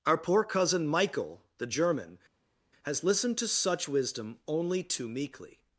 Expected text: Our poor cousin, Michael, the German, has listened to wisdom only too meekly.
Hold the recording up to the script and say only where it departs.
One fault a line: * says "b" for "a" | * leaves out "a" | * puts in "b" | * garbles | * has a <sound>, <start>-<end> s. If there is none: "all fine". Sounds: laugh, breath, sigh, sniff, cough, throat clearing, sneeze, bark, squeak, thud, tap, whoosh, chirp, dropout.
* puts in "such"